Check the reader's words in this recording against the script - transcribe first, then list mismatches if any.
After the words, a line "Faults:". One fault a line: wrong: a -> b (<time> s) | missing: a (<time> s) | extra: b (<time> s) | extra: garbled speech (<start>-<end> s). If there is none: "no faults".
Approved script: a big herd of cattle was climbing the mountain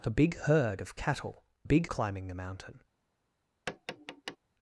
a big herd of cattle big climbing the mountain
Faults:
wrong: was -> big (1.6 s)